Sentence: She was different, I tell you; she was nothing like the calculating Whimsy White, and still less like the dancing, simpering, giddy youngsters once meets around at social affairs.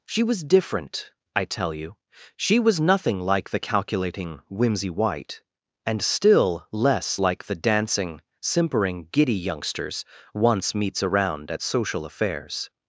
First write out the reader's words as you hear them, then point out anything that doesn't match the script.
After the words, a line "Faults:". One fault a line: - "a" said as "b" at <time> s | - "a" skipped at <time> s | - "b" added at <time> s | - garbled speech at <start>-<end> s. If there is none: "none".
She was different, I tell you; she was nothing like the calculating Whimsy White, and still less like the dancing, simpering, giddy youngsters once meets around at social affairs.
Faults:
none